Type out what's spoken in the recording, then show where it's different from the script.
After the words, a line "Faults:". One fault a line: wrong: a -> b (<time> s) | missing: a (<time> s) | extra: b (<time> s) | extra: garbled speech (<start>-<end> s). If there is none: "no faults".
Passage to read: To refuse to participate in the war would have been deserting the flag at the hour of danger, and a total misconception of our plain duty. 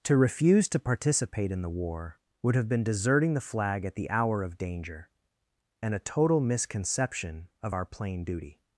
To refuse to participate in the war would have been deserting the flag at the hour of danger, and a total misconception of our plain duty.
Faults:
no faults